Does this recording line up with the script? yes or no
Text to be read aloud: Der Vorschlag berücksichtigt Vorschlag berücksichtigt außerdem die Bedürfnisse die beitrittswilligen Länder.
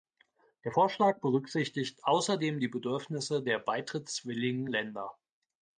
no